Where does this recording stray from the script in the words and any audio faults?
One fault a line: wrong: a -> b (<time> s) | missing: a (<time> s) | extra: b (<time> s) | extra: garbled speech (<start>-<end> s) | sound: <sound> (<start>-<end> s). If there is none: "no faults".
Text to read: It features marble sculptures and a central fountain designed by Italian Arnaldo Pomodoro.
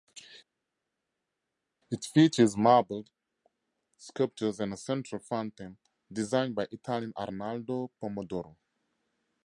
no faults